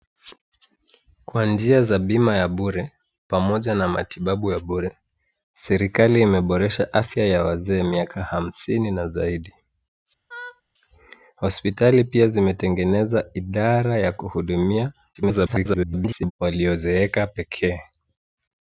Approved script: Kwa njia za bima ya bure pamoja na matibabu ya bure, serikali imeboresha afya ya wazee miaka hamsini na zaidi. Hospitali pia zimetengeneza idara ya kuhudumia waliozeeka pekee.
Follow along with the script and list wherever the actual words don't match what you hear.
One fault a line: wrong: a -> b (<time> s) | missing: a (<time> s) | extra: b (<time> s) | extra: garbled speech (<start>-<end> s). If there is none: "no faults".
extra: garbled speech (15.1-16.3 s)